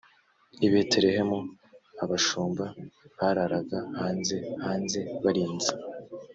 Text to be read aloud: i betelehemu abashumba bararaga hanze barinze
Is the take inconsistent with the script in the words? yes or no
yes